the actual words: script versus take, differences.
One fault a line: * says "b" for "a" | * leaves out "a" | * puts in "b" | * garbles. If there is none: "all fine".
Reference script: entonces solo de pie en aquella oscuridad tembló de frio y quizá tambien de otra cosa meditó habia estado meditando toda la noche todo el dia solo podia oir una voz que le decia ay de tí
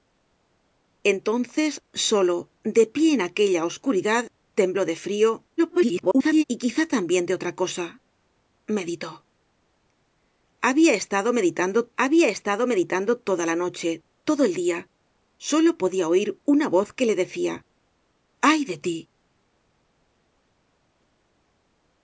* garbles
* puts in "habia estado meditando"